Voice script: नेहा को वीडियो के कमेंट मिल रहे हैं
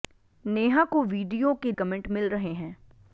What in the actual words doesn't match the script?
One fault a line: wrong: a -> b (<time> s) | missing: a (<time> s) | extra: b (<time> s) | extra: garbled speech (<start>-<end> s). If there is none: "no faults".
no faults